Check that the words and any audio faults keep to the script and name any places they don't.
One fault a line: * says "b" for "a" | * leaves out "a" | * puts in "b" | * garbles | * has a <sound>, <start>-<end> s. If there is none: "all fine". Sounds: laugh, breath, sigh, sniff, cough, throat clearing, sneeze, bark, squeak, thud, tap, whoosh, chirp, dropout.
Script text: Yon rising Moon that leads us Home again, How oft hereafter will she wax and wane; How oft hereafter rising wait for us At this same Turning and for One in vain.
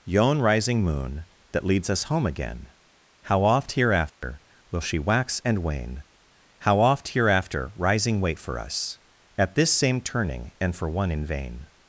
* has a dropout, 4.1-4.2 s